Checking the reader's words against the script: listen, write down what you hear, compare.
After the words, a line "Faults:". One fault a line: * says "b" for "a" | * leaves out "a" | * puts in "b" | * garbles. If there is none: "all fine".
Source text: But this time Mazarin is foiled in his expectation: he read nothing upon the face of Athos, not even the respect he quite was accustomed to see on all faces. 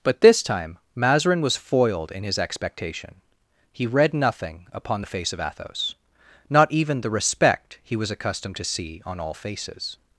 But this time Mazarin was foiled in his expectation: he read nothing upon the face of Athos, not even the respect he was accustomed to see on all faces.
Faults:
* says "was" for "is"
* leaves out "quite"